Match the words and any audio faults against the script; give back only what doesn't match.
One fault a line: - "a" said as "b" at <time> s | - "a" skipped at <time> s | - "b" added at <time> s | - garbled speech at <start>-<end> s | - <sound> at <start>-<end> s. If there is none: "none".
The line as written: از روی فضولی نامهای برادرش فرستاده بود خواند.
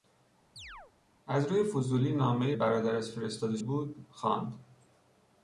- chirp at 0.6-0.9 s